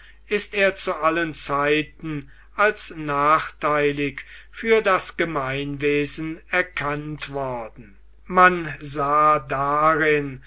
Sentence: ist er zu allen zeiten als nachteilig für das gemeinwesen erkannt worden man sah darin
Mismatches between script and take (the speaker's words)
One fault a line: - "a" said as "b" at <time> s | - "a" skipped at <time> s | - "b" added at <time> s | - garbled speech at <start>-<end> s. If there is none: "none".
none